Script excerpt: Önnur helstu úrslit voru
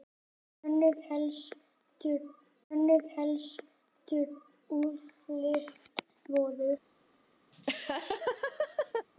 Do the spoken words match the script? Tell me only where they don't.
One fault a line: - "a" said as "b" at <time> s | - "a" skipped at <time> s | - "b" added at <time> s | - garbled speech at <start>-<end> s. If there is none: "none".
- "önnur helstu" added at 2.7 s